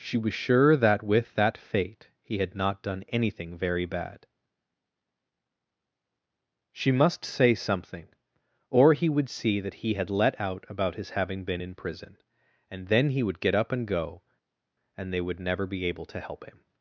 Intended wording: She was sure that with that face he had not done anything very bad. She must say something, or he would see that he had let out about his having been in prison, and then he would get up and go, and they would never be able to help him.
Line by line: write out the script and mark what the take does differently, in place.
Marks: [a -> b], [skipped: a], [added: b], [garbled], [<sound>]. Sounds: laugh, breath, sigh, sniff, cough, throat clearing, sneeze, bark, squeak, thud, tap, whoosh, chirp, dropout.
She was sure that with that [face -> fate] he had not done anything very bad. She must say something, or he would see that he had let out about his having been in prison, and then he would get up and go, and they would never be able to help him.